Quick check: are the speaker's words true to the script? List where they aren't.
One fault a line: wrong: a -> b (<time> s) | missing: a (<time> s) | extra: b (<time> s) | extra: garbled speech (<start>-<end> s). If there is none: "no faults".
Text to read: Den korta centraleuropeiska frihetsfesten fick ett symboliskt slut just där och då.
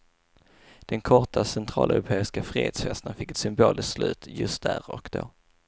no faults